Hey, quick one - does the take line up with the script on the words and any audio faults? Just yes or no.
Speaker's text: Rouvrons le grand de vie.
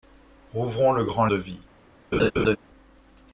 no